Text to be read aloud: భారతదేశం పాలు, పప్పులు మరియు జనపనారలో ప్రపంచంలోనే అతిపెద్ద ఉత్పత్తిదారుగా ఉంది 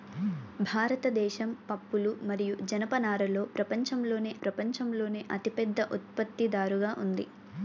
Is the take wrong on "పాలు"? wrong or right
wrong